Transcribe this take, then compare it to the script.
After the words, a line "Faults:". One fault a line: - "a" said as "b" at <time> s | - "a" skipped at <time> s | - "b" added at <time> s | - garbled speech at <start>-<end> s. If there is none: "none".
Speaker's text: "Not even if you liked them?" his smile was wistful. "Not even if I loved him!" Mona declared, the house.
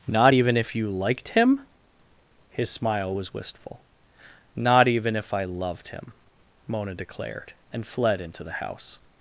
"Not even if you liked him?" his smile was wistful. "Not even if I loved him!" Mona declared, and fled into the house.
Faults:
- "them" said as "him" at 1.3 s
- "and fled into" added at 7.7 s